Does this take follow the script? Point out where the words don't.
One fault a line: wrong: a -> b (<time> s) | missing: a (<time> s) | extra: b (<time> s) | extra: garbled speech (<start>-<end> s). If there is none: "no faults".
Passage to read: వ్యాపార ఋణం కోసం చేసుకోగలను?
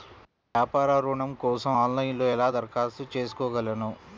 extra: ఆన్లైన్లో ఎలా దరఖాస్తు (1.8 s)